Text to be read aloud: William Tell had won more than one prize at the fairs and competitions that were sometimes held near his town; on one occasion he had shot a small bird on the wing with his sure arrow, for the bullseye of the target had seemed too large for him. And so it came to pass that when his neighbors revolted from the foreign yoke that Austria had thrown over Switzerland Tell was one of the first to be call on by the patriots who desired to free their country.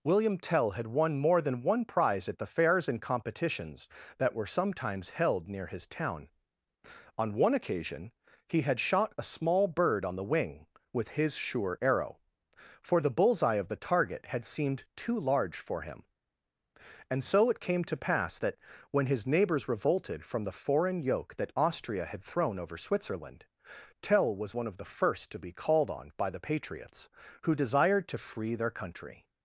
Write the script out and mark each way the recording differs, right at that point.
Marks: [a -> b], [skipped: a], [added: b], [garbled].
William Tell had won more than one prize at the fairs and competitions that were sometimes held near his town; on one occasion he had shot a small bird on the wing with his sure arrow, for the bullseye of the target had seemed too large for him. And so it came to pass that when his neighbors revolted from the foreign yoke that Austria had thrown over Switzerland Tell was one of the first to be [call -> called] on by the patriots who desired to free their country.